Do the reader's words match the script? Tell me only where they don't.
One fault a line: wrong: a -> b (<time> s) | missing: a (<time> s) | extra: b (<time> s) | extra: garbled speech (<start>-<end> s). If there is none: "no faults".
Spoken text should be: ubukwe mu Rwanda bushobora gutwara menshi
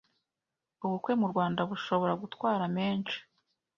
no faults